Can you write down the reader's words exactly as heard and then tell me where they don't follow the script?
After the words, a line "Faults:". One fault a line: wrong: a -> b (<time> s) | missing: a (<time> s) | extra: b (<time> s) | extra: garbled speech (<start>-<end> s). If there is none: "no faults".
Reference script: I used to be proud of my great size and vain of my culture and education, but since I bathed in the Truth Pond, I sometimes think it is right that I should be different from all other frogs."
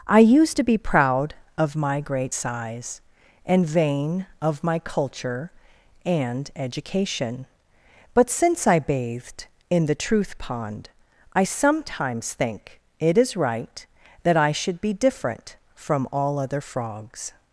I used to be proud of my great size and vain of my culture and education, but since I bathed in the Truth Pond, I sometimes think it is right that I should be different from all other frogs."
Faults:
no faults